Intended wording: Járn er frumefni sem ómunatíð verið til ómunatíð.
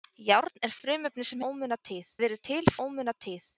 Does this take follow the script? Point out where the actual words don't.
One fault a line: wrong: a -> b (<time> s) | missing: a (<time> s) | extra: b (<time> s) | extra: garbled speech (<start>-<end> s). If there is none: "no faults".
no faults